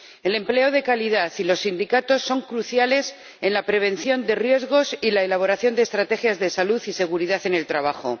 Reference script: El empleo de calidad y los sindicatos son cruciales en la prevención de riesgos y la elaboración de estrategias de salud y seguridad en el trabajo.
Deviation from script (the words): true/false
false